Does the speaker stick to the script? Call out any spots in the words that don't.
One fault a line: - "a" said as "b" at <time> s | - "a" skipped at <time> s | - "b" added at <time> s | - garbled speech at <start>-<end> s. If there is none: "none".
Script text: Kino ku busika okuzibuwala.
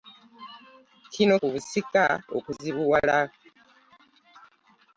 none